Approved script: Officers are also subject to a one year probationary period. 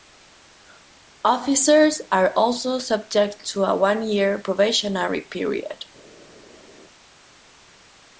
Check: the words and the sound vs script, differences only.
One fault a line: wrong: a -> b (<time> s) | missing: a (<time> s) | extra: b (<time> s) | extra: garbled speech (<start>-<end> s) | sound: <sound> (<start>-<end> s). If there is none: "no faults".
no faults